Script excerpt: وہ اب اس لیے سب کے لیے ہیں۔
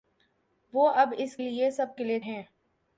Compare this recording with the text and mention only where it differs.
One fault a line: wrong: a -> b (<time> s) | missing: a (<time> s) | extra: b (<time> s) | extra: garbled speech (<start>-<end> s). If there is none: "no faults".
no faults